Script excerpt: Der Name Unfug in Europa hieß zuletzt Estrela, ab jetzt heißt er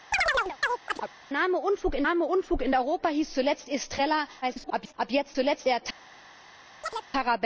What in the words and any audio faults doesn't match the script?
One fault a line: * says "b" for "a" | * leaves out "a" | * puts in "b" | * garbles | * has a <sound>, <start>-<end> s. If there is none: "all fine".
* has a chirp, 0.1-1.1 s
* puts in "Name Unfug in"
* garbles
* says "zuletzt" for "heißt"
* has a chirp, 6.8-7.1 s